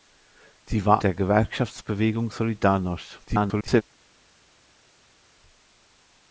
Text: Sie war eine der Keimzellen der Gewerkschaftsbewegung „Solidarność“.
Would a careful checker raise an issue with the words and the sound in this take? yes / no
yes